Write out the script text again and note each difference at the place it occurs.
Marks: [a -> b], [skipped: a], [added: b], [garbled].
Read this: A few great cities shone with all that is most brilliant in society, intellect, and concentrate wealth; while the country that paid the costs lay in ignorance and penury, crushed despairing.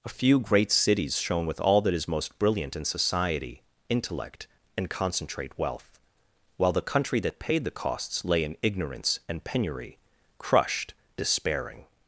A few great cities shone with all that is most brilliant in society, intellect, and concentrate wealth; while the country that paid the costs lay in ignorance and penury, crushed despairing.